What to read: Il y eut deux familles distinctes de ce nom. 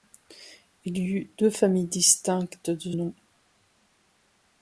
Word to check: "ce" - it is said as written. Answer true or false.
false